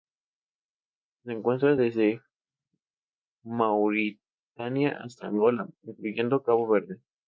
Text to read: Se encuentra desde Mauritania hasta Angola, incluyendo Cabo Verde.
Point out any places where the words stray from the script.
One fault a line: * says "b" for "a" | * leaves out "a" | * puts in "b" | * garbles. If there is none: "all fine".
all fine